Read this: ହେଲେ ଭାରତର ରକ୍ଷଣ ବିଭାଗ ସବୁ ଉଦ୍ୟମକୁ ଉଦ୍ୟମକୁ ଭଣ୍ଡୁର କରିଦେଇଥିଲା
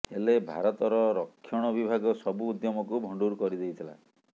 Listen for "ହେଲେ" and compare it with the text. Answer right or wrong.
right